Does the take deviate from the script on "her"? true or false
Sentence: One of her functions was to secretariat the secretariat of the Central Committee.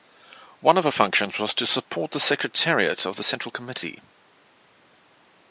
false